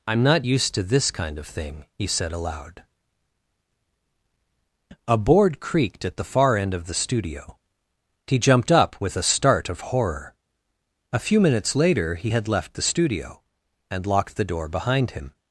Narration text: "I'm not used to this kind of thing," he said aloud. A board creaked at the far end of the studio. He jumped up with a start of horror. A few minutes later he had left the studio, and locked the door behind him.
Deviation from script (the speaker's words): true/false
false